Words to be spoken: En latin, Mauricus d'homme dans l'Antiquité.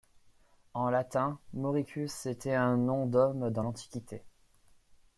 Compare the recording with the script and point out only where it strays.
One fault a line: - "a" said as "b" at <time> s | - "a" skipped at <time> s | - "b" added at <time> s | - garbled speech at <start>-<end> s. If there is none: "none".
- "était un nom" added at 2.2 s